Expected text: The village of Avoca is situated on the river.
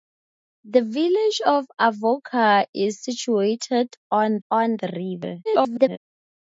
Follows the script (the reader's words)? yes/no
no